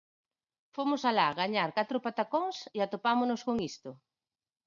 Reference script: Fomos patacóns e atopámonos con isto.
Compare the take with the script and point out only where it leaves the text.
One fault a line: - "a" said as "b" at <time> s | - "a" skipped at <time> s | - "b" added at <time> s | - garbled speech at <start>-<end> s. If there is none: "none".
- "alá gañar catro" added at 1.1 s